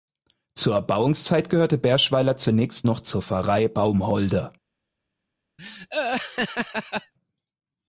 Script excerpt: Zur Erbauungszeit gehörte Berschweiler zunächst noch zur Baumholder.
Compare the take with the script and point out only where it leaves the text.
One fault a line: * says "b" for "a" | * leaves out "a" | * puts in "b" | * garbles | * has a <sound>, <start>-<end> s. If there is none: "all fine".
* puts in "Pfarrei"
* has a laugh, 5.6-7.1 s